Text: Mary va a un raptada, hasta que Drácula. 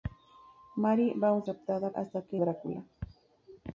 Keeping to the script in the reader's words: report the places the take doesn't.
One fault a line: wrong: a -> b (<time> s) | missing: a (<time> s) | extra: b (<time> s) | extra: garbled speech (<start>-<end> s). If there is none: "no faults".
no faults